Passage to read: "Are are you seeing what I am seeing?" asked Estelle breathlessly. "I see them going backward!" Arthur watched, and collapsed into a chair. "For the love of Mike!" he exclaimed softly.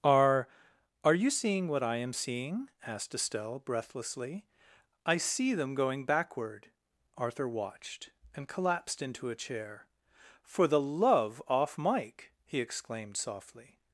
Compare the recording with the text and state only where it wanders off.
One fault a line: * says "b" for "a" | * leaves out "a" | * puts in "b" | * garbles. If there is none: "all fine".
* says "off" for "of"